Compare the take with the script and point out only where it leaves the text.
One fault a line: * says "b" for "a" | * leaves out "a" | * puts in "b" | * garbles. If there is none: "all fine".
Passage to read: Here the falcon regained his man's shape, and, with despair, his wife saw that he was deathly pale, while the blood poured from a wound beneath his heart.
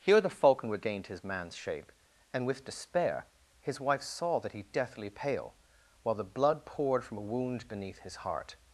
* leaves out "was"